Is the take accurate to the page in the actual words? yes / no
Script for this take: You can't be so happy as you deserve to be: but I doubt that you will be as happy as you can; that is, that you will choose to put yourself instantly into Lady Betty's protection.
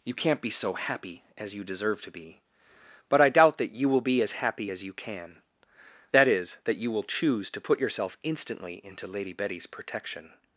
yes